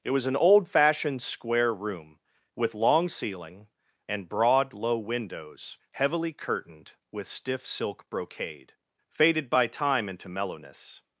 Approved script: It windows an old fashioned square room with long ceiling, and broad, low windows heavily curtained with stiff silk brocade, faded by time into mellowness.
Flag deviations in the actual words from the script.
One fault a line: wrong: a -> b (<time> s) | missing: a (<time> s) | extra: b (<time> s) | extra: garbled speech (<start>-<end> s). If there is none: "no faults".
wrong: windows -> was (0.1 s)